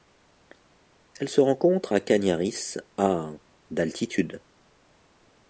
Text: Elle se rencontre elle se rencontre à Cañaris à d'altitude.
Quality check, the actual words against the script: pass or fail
fail